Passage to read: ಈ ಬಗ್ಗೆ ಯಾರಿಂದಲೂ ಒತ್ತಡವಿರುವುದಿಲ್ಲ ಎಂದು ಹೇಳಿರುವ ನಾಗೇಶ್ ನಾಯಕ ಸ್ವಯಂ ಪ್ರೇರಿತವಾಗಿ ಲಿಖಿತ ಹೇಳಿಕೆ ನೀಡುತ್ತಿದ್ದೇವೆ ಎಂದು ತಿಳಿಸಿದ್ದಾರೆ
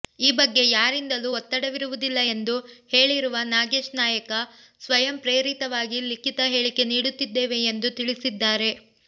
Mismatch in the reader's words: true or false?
false